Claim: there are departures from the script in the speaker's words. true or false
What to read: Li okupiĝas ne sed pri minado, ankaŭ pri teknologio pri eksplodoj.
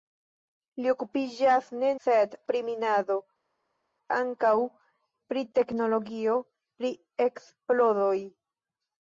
false